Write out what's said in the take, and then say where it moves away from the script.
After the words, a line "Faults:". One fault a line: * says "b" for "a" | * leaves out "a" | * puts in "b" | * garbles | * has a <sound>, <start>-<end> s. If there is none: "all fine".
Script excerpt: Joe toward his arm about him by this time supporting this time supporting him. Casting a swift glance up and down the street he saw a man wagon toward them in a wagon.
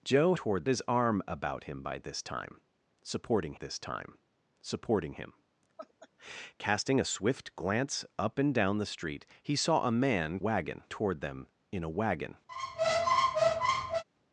Joe toward his arm about him by this time supporting this time supporting him. Casting a swift glance up and down the street he saw a man wagon toward them in a wagon.
Faults:
* has a laugh, 5.8-6.1 s
* has a squeak, 12.5-14.0 s